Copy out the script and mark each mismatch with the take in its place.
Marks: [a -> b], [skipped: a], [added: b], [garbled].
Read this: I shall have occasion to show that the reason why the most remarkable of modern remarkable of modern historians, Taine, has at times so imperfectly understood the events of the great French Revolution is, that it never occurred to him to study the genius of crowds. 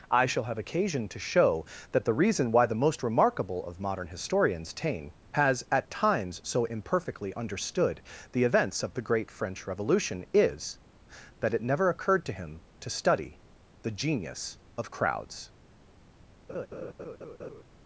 I shall have occasion to show that the reason why the most remarkable of modern [skipped: remarkable of modern] historians, Taine, has at times so imperfectly understood the events of the great French Revolution is, that it never occurred to him to study the genius of crowds.